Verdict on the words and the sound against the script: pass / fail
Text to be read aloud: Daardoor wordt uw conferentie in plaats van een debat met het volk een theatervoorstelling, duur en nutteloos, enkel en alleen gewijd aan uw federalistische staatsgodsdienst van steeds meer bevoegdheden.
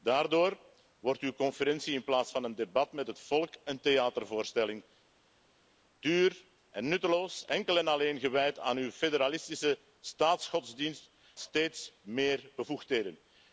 fail